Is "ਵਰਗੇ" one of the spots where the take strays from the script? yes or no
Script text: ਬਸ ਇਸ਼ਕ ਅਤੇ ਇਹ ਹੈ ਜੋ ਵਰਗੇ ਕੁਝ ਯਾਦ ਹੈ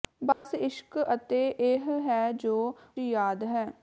yes